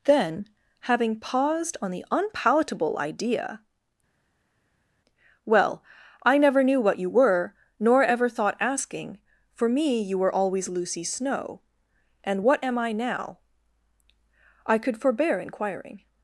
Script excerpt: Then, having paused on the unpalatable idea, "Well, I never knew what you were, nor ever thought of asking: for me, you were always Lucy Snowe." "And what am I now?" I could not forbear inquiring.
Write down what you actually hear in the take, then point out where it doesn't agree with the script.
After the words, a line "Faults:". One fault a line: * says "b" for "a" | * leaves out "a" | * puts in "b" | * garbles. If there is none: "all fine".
Then, having paused on the unpalatable idea, "Well, I never knew what you were, nor ever thought asking: for me, you were always Lucy Snowe." "And what am I now?" I could forbear inquiring.
Faults:
* leaves out "of"
* leaves out "not"